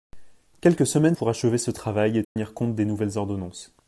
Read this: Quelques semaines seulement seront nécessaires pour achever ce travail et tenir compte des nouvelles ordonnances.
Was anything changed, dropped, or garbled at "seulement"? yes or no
yes